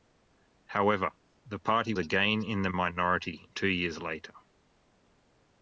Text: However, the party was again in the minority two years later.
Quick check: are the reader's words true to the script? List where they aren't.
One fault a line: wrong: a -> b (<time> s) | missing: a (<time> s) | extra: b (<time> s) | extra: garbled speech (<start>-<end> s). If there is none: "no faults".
missing: was (1.9 s)